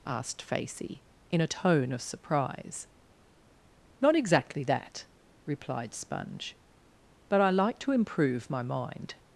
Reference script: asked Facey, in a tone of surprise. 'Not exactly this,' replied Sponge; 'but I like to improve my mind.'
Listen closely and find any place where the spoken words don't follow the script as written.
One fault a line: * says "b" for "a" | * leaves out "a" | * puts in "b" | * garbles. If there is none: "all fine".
* says "that" for "this"